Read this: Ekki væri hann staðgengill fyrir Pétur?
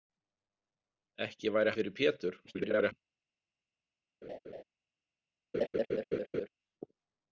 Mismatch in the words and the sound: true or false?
true